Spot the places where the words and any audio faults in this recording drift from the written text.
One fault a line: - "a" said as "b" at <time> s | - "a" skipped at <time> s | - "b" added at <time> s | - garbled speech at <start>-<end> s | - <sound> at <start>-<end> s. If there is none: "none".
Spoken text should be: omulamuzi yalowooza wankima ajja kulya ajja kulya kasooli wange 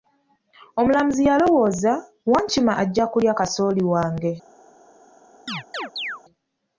- "ajja kulya" skipped at 3.3 s
- chirp at 5.5-6.2 s